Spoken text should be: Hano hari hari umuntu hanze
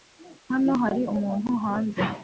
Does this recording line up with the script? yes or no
no